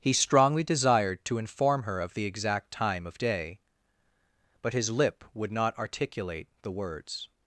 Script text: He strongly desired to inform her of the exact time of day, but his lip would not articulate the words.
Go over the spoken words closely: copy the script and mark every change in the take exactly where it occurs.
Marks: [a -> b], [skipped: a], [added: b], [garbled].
He strongly desired to inform her of the exact time of day, but his lip would not articulate the words.